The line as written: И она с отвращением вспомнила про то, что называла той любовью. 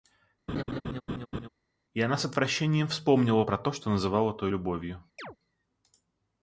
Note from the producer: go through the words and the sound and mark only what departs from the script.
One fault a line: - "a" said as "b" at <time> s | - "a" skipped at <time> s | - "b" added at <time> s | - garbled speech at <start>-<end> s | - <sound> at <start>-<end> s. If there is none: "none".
- laugh at 0.5-1.5 s
- chirp at 5.2-5.4 s